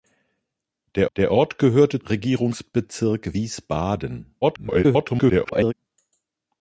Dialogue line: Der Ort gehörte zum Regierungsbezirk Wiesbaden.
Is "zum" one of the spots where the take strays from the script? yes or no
yes